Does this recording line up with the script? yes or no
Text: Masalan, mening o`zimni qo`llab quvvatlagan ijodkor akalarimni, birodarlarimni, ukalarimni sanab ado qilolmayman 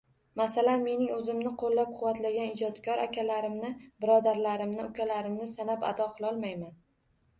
yes